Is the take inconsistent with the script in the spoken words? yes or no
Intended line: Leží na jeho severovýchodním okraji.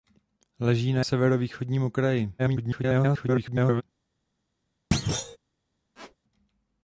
yes